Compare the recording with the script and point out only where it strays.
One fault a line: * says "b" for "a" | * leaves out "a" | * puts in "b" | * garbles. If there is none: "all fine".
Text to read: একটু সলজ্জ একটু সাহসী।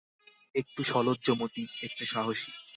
* puts in "মতি"